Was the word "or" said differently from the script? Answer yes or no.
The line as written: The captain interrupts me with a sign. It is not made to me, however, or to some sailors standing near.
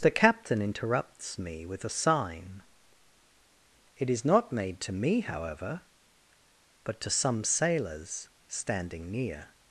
yes